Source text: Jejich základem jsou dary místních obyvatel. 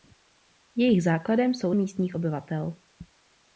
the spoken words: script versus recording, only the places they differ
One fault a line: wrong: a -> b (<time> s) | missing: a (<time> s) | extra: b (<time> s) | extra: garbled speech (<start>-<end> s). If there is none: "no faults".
missing: dary (1.7 s)